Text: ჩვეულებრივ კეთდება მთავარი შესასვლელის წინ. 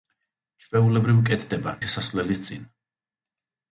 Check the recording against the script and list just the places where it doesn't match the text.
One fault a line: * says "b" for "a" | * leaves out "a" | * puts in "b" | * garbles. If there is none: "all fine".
* leaves out "მთავარი"